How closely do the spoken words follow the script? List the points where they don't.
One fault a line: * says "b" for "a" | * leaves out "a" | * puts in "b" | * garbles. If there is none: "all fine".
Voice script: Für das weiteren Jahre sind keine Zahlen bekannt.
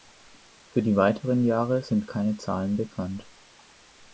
* says "die" for "das"